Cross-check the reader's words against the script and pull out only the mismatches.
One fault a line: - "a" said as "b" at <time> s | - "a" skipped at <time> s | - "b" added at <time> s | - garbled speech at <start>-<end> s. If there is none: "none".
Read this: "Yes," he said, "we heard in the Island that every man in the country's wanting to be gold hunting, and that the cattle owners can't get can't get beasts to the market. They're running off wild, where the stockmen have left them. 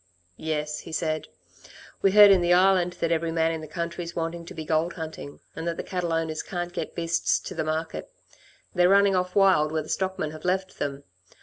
- "can't get" skipped at 6.9 s